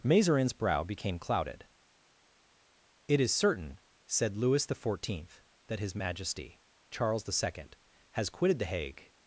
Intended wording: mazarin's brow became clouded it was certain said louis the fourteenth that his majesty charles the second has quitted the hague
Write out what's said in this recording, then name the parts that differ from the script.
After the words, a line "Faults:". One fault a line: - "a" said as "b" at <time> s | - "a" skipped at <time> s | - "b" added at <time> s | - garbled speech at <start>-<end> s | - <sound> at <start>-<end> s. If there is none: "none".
mazarin's brow became clouded it is certain said louis the fourteenth that his majesty charles the second has quitted the hague
Faults:
- "was" said as "is" at 3.2 s